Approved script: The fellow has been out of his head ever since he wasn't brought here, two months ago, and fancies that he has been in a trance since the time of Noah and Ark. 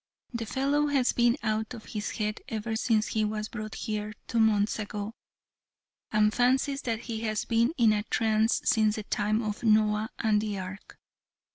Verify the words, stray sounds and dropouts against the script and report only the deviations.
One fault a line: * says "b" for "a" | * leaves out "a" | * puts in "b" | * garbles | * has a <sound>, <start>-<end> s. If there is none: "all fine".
* says "was" for "wasn't"
* puts in "the"